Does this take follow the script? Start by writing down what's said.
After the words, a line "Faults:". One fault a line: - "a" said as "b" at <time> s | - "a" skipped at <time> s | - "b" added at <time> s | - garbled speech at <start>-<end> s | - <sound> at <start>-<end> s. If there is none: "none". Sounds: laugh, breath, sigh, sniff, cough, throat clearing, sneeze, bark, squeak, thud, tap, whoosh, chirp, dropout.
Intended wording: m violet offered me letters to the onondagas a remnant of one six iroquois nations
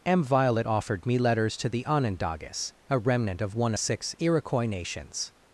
m violet offered me letters to the onondagas a remnant of one six iroquois nations
Faults:
none